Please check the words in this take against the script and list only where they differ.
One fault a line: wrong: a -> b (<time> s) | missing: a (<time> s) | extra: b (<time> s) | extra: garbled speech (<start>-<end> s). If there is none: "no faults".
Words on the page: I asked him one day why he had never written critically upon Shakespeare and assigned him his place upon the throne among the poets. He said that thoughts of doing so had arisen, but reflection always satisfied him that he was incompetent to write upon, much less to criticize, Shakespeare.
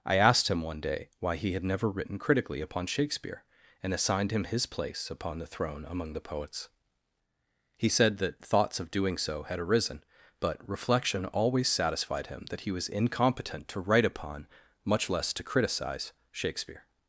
no faults